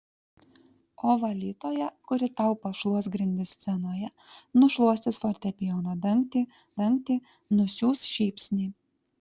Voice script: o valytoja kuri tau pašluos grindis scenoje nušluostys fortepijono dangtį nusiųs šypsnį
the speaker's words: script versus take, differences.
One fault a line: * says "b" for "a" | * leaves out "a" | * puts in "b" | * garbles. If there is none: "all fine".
* puts in "dangtį"